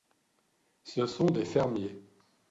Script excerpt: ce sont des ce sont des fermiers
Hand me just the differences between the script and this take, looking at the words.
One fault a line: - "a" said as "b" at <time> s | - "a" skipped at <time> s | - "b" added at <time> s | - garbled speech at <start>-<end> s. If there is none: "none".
- "ce sont des" skipped at 1.4 s